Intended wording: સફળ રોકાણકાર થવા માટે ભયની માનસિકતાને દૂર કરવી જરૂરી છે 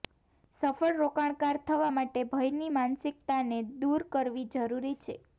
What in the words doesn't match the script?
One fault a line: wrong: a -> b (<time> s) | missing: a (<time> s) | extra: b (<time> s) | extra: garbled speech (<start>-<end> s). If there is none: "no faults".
no faults